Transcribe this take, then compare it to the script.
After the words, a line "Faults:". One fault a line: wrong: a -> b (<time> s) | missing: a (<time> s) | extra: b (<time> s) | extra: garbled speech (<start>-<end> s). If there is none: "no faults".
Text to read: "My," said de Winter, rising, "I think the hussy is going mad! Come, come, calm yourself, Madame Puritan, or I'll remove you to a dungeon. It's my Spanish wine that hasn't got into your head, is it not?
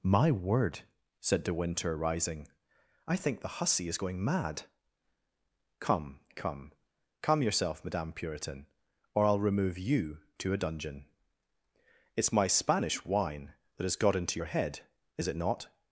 "My word," said de Winter, rising, "I think the hussy is going mad! Come, come, calm yourself, Madame Puritan, or I'll remove you to a dungeon. It's my Spanish wine that has got into your head, is it not?
Faults:
extra: word (0.3 s)
wrong: hasn't -> has (13.8 s)